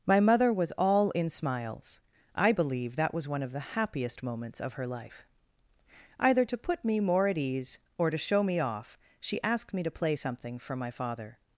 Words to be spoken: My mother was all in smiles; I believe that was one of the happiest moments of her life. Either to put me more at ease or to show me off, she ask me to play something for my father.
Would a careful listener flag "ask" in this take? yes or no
yes